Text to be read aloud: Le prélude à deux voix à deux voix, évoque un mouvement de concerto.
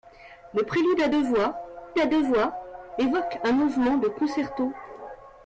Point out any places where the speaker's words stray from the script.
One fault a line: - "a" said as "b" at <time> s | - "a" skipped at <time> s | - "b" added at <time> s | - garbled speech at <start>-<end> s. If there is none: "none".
none